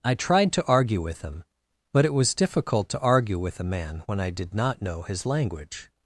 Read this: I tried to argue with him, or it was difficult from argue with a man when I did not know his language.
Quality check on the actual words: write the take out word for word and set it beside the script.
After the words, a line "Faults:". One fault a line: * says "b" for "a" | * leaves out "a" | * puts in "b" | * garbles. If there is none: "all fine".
I tried to argue with him, but it was difficult to argue with a man when I did not know his language.
Faults:
* says "but" for "or"
* says "to" for "from"